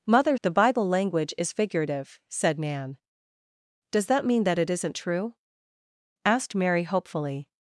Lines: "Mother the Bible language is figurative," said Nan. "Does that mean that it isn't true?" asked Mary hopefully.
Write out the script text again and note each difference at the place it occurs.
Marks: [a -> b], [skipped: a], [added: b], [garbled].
"Mother the Bible language is figurative," said Nan. "Does that mean that it isn't true?" asked Mary hopefully.